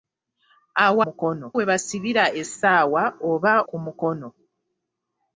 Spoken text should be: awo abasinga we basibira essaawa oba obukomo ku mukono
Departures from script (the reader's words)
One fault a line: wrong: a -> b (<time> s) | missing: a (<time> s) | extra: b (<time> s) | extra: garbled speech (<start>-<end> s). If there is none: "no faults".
wrong: abasinga -> mukono (1.0 s)
missing: obukomo (3.5 s)